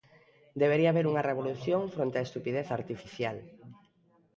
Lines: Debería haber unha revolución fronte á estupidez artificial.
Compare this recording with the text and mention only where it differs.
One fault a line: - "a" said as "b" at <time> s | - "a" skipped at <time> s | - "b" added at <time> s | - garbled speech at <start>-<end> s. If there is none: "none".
none